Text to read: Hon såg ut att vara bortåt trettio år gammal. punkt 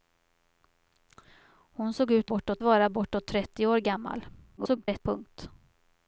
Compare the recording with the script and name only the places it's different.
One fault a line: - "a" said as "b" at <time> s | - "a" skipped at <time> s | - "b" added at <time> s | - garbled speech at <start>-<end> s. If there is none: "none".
- "att" said as "bortåt" at 2.2 s
- garbled speech at 4.6-5.0 s